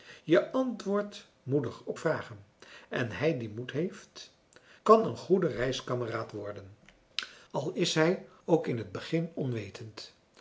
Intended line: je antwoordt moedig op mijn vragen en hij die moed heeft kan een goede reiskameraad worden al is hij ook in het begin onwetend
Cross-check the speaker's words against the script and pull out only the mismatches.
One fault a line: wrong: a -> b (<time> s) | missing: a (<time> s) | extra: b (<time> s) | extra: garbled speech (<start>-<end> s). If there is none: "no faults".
missing: mijn (2.0 s)